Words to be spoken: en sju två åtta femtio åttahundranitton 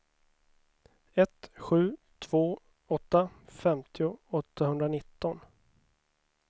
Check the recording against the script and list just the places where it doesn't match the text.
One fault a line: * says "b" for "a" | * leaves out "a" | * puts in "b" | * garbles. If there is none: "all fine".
* says "ett" for "en"